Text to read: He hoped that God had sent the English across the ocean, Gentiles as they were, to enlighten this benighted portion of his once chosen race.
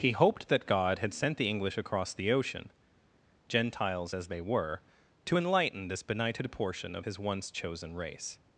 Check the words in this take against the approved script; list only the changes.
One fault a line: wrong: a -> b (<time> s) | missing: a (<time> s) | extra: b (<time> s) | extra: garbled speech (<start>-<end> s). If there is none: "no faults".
no faults